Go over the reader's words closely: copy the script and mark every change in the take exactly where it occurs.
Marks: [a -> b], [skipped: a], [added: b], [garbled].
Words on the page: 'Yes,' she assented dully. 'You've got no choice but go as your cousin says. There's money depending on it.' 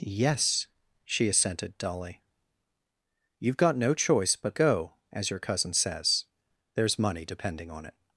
'Yes,' she assented dully. 'You've got no choice but go as your cousin says. There's money depending on it.'